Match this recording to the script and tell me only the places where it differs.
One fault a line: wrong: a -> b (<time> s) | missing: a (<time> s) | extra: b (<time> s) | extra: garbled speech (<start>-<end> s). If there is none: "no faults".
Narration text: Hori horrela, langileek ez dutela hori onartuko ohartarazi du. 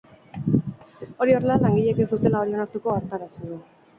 no faults